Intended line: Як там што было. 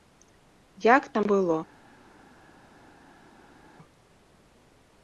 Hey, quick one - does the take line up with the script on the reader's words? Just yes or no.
no